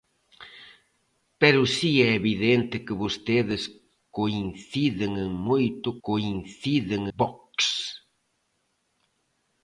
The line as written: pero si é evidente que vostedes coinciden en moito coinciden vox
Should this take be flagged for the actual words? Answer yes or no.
no